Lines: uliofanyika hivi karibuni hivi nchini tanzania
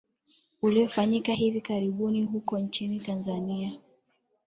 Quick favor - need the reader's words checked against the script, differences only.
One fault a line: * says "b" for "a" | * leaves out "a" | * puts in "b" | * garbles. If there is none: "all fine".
* says "huko" for "hivi"